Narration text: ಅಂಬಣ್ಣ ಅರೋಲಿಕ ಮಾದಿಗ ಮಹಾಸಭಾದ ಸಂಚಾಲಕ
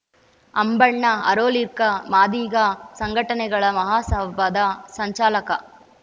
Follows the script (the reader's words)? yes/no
no